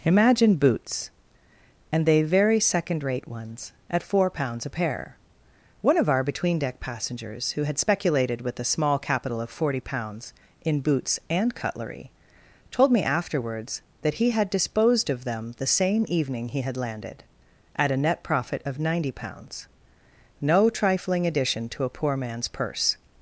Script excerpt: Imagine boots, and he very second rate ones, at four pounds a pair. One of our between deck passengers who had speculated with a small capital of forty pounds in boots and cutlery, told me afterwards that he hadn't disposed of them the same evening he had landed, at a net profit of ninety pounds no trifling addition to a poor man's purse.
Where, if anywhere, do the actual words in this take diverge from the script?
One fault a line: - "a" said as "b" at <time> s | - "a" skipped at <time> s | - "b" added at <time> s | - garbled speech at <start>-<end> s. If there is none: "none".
- "he" said as "they" at 2.1 s
- "hadn't" said as "had" at 14.3 s